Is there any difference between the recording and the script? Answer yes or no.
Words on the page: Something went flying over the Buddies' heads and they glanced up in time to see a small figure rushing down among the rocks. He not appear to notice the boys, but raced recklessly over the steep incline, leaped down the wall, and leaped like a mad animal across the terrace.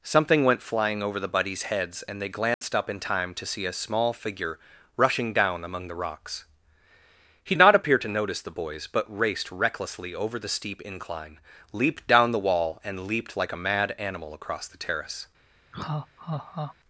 no